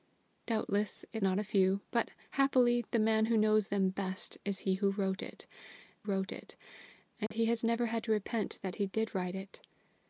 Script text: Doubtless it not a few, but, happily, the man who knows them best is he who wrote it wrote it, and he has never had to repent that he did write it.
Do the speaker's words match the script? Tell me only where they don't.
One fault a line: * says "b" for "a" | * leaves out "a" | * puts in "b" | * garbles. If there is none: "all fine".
all fine